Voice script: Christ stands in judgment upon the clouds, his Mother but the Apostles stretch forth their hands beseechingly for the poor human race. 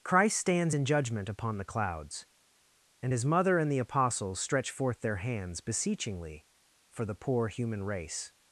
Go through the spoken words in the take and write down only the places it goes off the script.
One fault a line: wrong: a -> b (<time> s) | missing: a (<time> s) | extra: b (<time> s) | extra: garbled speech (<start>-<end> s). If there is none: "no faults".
extra: and (3.0 s)
wrong: but -> and (3.6 s)